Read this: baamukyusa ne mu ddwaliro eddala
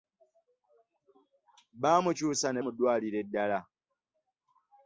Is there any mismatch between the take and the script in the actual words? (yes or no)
no